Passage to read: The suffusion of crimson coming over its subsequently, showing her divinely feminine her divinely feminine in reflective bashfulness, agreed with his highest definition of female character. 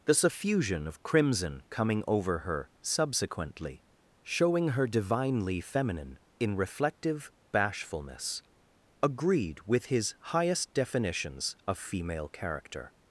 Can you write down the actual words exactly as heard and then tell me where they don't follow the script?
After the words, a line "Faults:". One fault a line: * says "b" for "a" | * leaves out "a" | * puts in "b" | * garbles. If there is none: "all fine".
The suffusion of crimson coming over her subsequently, showing her divinely feminine in reflective bashfulness, agreed with his highest definitions of female character.
Faults:
* says "her" for "its"
* leaves out "her divinely feminine"
* says "definitions" for "definition"